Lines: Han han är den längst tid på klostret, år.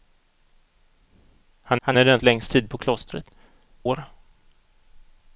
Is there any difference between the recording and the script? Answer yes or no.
no